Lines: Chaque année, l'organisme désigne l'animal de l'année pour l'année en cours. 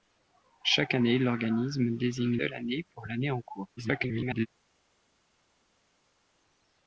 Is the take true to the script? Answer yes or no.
no